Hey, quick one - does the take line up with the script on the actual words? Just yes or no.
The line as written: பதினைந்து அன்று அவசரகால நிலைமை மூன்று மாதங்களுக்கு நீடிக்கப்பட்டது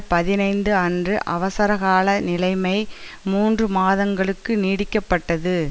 yes